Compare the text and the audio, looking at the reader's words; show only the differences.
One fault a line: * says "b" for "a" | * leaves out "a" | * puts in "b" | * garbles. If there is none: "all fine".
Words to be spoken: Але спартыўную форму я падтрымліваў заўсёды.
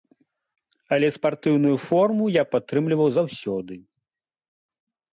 all fine